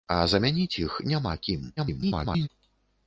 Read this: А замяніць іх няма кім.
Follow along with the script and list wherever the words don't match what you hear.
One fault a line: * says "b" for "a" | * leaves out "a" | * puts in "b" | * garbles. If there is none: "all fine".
* garbles